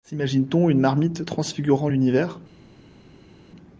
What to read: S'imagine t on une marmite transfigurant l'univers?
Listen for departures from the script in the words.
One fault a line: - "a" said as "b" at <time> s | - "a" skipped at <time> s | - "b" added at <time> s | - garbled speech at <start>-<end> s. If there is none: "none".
none